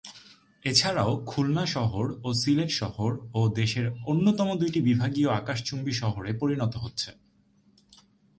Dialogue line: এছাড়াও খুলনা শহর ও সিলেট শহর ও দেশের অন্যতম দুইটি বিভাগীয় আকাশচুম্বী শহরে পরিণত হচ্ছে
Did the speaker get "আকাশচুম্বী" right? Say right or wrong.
right